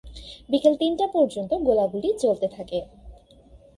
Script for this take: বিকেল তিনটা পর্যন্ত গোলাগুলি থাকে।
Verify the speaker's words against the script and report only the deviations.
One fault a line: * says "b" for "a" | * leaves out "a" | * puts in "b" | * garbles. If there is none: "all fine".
* puts in "চলতে"